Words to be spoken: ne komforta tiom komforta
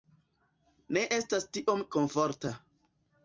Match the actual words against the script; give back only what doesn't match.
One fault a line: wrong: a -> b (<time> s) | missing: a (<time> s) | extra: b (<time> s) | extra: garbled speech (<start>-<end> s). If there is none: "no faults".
wrong: komforta -> estas (1.2 s)